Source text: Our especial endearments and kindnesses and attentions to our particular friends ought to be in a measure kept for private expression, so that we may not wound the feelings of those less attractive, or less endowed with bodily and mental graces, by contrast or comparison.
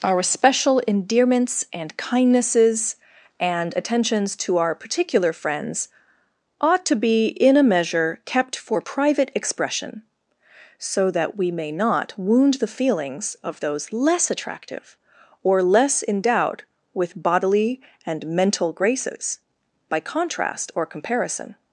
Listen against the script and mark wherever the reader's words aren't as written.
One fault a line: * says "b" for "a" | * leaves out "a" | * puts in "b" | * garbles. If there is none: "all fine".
* says "special" for "especial"